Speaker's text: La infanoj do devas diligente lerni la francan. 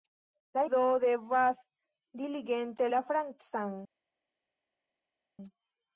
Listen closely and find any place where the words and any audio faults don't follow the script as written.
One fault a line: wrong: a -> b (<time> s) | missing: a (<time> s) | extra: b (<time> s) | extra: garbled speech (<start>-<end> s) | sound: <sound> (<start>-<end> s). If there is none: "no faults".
missing: infanoj (0.6 s)
missing: lerni (2.9 s)